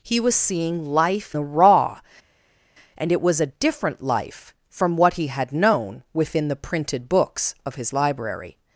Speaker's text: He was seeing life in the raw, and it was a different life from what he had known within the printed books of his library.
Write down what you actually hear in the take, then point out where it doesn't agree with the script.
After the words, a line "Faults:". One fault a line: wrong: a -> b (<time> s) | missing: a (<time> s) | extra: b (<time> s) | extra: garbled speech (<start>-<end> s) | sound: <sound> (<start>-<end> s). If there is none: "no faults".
He was seeing life the raw, and it was a different life from what he had known within the printed books of his library.
Faults:
missing: in (1.4 s)